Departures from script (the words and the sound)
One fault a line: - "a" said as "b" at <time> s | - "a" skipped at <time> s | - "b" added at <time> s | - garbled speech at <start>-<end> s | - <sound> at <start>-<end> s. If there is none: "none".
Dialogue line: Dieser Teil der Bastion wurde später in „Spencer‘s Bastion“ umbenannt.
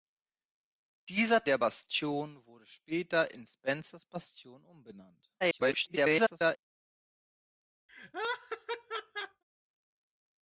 - "Teil" skipped at 1.4 s
- garbled speech at 5.4-6.6 s
- laugh at 7.9-9.4 s